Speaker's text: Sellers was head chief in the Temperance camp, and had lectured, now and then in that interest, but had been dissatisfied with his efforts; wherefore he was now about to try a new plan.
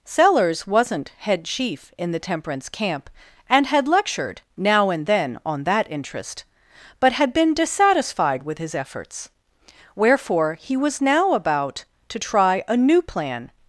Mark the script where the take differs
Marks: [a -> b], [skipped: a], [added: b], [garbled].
Sellers [was -> wasn't] head chief in the Temperance camp, and had lectured, now and then [in -> on] that interest, but had been dissatisfied with his efforts; wherefore he was now about to try a new plan.